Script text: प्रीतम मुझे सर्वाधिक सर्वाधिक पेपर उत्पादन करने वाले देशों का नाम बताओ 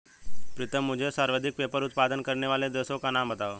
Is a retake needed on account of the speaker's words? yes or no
yes